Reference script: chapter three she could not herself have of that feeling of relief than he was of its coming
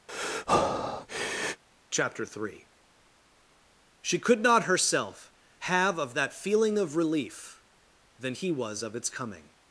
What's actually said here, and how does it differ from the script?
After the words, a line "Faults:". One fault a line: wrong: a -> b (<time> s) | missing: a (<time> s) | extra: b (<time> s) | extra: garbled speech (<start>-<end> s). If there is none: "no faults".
chapter three she could not herself have of that feeling of relief than he was of its coming
Faults:
no faults